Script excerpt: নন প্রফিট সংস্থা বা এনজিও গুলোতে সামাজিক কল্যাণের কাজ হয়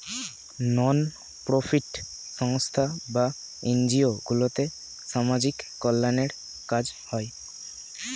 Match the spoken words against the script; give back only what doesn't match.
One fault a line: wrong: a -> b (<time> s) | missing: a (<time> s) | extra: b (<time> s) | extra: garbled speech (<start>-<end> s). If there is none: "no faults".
no faults